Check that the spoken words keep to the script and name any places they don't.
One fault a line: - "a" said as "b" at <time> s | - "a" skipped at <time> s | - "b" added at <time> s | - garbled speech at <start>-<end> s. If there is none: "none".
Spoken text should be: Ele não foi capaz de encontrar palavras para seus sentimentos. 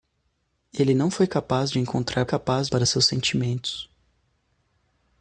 - "palavras" said as "capaz" at 2.2 s